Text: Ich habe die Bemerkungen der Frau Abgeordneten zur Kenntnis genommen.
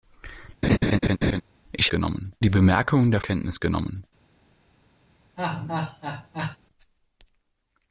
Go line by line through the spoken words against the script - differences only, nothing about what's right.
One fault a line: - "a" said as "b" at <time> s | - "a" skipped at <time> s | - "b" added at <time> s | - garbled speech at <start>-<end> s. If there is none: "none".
- "habe" said as "genommen" at 1.9 s
- "Frau Abgeordneten zur" skipped at 3.2 s